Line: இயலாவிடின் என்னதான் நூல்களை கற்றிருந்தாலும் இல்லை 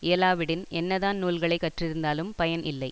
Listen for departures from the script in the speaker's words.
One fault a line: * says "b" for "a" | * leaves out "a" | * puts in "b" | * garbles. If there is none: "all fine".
* puts in "பயன்"